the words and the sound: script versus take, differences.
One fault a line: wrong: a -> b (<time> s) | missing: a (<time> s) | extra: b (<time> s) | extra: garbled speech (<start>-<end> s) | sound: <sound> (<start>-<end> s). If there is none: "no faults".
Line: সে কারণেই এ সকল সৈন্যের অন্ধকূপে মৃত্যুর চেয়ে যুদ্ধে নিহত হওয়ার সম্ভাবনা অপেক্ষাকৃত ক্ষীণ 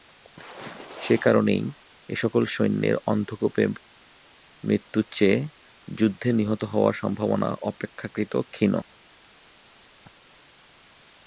no faults